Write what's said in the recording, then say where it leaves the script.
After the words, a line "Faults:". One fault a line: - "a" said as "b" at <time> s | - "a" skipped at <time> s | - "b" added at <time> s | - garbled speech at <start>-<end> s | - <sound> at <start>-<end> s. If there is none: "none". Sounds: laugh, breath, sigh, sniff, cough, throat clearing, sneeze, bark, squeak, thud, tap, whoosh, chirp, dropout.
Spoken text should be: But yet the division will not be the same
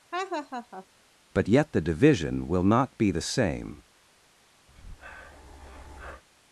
But yet the division will not be the same
Faults:
- laugh at 0.1-0.9 s
- breath at 4.7-6.2 s